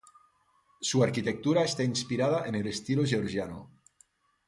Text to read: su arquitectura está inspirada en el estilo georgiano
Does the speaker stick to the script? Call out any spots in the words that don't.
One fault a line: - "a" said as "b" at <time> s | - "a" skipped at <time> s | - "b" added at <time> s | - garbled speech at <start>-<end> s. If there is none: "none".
none